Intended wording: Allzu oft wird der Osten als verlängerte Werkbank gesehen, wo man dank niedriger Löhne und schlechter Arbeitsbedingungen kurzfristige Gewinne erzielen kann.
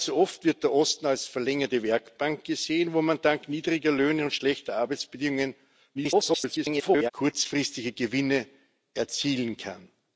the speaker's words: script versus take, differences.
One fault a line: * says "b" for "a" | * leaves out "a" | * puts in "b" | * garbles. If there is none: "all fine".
* garbles